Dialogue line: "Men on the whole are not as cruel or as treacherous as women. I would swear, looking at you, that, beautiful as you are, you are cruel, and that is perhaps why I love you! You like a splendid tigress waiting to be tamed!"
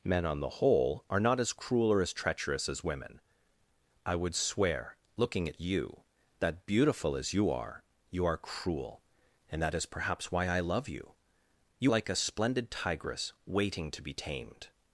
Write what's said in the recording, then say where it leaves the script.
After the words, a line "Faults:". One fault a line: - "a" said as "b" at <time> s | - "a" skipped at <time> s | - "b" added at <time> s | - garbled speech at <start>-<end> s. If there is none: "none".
"Men on the whole are not as cruel or as treacherous as women. I would swear, looking at you, that, beautiful as you are, you are cruel, and that is perhaps why I love you! You like a splendid tigress waiting to be tamed!"
Faults:
none